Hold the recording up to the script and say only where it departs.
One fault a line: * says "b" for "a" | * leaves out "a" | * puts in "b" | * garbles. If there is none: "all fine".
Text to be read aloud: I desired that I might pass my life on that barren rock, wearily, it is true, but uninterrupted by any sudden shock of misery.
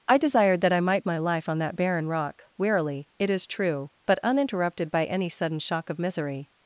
* leaves out "pass"